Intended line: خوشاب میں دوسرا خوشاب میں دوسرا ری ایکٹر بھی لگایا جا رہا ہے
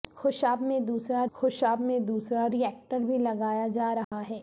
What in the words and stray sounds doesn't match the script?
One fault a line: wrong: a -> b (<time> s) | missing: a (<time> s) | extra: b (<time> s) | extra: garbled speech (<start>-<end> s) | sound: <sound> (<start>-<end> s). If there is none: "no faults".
sound: dropout (4.0-4.1 s)